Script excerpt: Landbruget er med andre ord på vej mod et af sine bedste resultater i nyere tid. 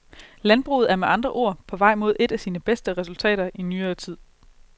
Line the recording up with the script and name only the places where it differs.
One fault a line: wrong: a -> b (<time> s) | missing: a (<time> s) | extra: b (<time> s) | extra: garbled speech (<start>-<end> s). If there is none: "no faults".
no faults